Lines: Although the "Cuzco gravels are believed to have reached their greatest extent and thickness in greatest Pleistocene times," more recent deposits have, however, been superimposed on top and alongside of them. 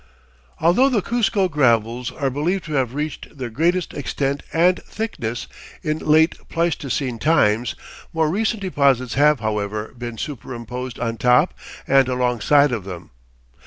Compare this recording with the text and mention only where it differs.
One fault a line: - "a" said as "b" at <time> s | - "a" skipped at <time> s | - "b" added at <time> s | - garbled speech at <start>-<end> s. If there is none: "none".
- "greatest" said as "late" at 6.0 s